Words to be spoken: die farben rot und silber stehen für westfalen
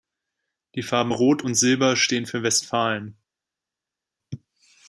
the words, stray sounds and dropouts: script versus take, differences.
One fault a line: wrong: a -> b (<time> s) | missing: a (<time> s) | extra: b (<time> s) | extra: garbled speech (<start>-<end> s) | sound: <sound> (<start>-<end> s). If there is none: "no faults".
no faults